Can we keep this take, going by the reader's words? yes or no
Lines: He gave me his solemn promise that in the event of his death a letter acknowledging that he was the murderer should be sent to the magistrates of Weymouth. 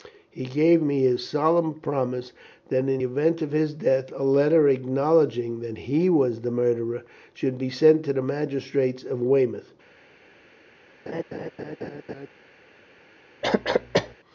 no